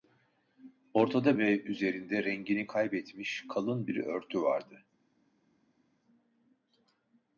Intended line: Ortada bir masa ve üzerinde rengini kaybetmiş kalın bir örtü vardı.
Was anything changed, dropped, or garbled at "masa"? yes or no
yes